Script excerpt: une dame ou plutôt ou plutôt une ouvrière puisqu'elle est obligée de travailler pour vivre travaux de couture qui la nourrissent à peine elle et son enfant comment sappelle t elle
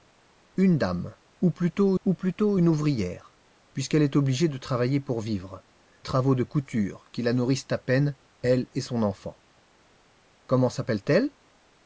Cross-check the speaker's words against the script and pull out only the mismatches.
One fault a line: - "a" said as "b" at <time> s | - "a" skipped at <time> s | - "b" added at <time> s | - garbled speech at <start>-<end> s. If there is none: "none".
none